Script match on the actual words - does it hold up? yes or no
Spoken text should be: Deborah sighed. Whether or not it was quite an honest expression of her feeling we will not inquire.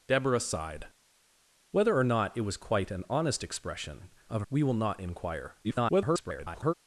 no